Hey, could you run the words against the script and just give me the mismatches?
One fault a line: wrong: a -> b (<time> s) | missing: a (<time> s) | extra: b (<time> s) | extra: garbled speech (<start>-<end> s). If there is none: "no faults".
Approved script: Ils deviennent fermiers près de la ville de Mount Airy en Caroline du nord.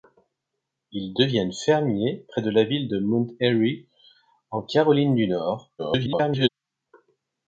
extra: garbled speech (5.8-6.5 s)